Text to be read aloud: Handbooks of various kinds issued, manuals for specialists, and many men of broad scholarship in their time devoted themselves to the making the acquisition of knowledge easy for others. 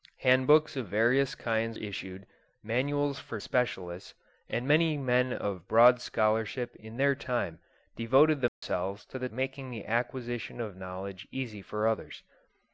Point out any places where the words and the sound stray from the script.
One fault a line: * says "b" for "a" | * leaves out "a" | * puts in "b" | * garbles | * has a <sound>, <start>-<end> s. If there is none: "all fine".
* has a dropout, 8.5-8.6 s